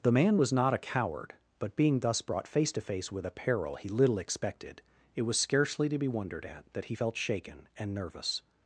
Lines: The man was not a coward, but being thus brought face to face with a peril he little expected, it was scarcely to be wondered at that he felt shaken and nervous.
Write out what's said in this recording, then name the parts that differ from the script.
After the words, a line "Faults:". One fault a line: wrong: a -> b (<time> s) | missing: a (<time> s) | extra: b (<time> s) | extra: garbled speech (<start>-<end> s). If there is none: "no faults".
The man was not a coward, but being thus brought face to face with a peril he little expected, it was scarcely to be wondered at that he felt shaken and nervous.
Faults:
no faults